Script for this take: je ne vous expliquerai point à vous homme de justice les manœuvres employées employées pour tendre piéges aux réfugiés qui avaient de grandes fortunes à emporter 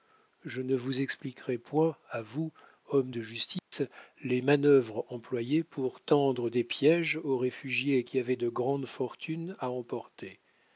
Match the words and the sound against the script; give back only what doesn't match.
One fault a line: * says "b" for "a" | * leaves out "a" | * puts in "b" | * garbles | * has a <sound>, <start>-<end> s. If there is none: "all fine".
* has a dropout, 3.6-3.7 s
* leaves out "employées"
* puts in "des"